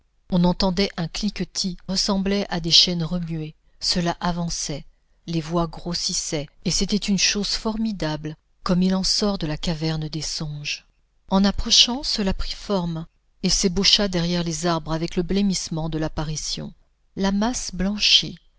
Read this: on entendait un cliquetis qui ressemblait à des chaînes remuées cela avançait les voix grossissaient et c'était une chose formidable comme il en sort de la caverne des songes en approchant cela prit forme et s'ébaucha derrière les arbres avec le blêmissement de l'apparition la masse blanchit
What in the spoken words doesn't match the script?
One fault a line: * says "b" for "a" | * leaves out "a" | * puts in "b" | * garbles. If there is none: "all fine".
* leaves out "qui"